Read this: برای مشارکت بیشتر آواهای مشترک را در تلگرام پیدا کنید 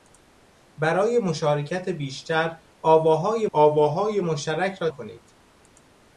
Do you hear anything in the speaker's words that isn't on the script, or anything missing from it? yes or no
yes